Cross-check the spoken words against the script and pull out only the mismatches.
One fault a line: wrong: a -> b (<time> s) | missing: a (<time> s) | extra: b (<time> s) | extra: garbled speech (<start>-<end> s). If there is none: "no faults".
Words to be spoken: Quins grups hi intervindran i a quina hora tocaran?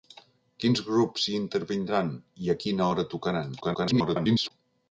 extra: garbled speech (3.6-4.5 s)